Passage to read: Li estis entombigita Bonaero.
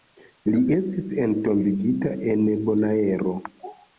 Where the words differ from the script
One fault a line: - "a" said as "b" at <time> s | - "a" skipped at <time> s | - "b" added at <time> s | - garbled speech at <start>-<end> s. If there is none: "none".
- "en" added at 2.4 s